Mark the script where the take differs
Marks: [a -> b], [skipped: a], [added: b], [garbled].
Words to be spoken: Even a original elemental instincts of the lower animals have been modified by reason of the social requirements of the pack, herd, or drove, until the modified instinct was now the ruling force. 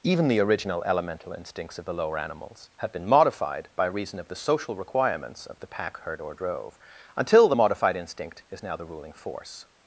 Even [a -> the] original elemental instincts of the lower animals have been modified by reason of the social requirements of the pack, herd, or drove, until the modified instinct [was -> is] now the ruling force.